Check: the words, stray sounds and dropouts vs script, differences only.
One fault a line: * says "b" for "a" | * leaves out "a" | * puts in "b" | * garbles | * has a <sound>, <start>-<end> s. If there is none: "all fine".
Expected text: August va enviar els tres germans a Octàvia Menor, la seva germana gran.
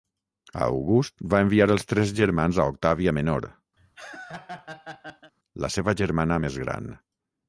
* has a laugh, 3.8-5.3 s
* puts in "més"